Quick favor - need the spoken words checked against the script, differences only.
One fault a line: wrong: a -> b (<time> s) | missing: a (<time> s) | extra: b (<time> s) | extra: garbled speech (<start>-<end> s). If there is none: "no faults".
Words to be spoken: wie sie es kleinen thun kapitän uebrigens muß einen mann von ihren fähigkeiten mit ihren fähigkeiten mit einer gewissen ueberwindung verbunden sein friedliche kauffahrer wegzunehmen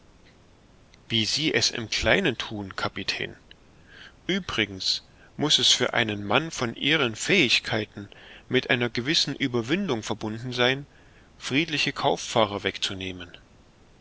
extra: im (1.7 s)
extra: es für (5.6 s)
missing: ihren fähigkeiten mit (8.7 s)